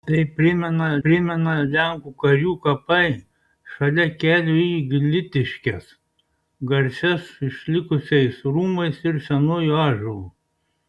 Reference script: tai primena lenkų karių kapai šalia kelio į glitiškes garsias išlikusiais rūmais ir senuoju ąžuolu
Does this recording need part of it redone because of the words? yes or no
yes